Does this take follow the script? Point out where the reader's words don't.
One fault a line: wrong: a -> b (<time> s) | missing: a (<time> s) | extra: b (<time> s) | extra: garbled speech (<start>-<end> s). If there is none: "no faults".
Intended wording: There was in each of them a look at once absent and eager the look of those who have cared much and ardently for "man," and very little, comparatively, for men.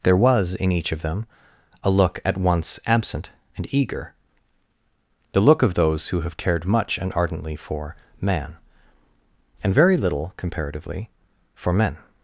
no faults